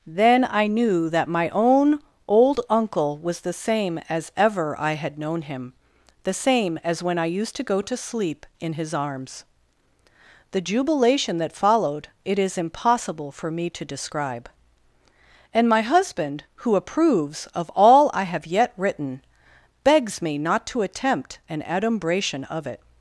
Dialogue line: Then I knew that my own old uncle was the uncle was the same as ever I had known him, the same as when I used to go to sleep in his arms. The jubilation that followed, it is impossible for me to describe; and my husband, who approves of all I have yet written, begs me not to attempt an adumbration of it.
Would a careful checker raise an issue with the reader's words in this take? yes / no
yes